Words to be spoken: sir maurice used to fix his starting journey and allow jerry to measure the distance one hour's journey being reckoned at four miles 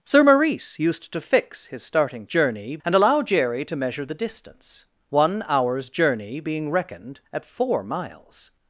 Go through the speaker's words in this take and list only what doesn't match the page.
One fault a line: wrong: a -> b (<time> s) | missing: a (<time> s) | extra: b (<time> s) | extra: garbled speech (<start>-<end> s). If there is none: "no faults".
no faults